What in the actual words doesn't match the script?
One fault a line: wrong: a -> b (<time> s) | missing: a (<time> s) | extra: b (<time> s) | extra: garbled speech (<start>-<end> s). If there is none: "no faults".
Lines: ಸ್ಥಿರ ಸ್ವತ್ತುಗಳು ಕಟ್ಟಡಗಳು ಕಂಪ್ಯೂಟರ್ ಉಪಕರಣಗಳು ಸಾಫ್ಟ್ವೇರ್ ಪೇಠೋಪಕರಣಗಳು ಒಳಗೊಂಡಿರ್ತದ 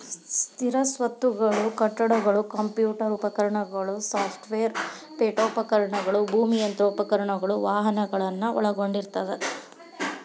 extra: ಭೂಮಿ ಯಂತ್ರೋಪಕರಣಗಳು ವಾಹನಗಳನ್ನ (6.3 s)